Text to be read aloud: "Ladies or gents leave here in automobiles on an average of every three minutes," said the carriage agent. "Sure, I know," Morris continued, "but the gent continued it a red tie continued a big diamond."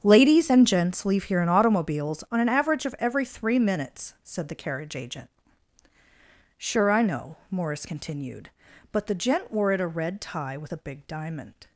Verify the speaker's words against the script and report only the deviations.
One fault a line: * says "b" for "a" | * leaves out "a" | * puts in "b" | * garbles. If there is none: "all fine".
* says "and" for "or"
* says "wore" for "continued"
* says "with" for "continued"